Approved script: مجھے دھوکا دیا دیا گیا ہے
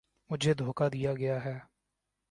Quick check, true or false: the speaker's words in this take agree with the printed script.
false